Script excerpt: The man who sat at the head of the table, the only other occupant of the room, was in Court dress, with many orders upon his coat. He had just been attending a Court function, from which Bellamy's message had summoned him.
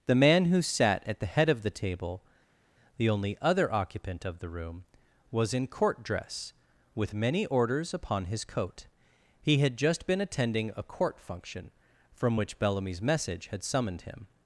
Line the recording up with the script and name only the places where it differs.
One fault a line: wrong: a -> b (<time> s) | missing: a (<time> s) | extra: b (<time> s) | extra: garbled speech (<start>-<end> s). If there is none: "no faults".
no faults